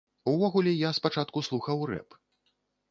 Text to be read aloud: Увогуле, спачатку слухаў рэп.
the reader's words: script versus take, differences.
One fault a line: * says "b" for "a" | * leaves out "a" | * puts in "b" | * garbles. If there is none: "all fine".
* puts in "я"